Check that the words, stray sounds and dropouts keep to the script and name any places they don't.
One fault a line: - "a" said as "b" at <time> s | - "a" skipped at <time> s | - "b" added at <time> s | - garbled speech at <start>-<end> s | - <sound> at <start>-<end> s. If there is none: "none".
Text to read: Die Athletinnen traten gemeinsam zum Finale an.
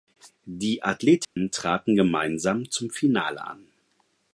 - dropout at 1.2-1.4 s